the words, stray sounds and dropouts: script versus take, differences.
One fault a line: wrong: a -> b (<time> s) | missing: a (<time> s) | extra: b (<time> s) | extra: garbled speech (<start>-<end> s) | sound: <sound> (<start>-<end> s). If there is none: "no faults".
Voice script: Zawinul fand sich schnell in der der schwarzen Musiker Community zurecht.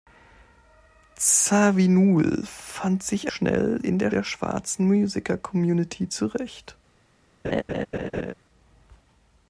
sound: laugh (7.4-8.3 s)